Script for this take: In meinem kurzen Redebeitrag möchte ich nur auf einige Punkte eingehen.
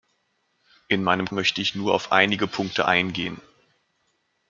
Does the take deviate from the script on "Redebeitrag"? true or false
true